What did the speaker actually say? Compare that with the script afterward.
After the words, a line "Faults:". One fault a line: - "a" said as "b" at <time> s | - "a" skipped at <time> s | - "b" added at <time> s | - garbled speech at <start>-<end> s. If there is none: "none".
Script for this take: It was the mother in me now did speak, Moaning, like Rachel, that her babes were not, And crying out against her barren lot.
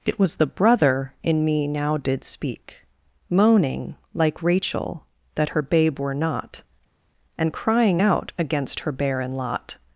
It was the brother in me now did speak, Moaning, like Rachel, that her babe were not, And crying out against her barren lot.
Faults:
- "mother" said as "brother" at 0.5 s
- "babes" said as "babe" at 5.6 s